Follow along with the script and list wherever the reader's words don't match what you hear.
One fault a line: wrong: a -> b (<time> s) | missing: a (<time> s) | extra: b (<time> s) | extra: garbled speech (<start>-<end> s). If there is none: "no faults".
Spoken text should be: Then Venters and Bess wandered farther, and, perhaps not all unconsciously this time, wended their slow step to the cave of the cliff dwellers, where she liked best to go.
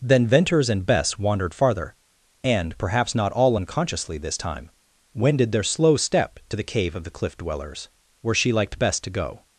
no faults